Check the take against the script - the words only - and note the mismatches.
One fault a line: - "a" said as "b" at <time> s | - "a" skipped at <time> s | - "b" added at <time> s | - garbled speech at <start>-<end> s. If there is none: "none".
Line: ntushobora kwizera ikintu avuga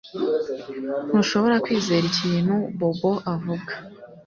- "bobo" added at 2.8 s